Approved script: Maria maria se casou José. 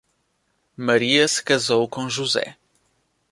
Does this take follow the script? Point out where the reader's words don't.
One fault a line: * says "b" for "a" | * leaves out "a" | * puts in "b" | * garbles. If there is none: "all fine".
* leaves out "maria"
* puts in "com"